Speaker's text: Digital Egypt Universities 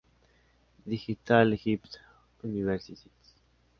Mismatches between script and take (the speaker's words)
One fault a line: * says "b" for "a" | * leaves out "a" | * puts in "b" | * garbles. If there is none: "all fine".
all fine